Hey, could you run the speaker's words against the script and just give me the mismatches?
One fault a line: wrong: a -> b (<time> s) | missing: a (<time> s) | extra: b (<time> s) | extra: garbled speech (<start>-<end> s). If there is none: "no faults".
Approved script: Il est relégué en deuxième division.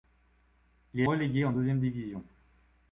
no faults